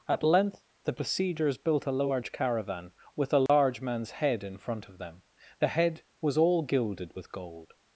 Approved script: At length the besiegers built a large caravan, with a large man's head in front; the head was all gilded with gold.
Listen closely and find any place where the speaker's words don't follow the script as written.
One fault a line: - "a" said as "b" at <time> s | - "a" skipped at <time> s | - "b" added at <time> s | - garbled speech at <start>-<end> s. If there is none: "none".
- "of them" added at 4.9 s